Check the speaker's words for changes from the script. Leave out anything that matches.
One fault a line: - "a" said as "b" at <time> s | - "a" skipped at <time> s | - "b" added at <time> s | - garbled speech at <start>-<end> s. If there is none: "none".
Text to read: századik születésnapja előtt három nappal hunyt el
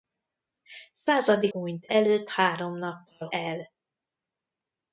- "születésnapja" said as "hunyt" at 1.5 s
- "hunyt" skipped at 3.3 s